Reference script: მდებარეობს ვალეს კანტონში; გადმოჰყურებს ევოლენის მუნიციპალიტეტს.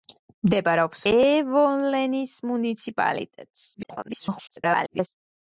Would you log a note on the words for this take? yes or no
yes